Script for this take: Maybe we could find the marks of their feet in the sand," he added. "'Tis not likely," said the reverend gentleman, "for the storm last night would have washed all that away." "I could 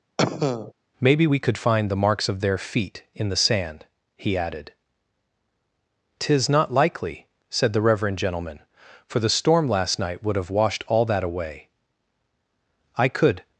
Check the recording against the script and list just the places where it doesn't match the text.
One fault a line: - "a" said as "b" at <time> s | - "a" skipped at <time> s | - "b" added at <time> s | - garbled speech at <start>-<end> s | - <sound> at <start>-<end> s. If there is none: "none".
- cough at 0.2-0.7 s